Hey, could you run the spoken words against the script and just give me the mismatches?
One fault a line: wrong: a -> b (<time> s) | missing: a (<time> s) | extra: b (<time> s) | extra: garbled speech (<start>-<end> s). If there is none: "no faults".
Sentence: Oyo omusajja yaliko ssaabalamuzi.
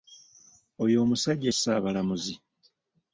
missing: yaliko (1.5 s)